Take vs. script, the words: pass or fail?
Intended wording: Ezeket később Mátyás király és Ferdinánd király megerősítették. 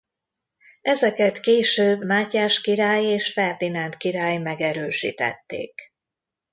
pass